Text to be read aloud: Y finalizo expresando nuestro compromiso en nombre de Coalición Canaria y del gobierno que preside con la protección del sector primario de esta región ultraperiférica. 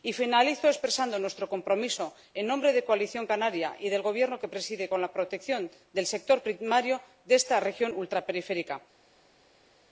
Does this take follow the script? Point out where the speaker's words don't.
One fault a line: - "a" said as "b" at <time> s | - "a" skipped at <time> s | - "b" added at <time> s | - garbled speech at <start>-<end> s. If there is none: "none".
none